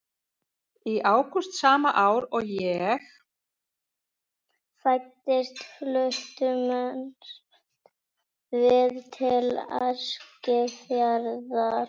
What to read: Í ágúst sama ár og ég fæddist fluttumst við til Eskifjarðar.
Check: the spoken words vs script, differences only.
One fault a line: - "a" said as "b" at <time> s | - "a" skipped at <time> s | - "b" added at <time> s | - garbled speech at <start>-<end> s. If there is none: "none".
none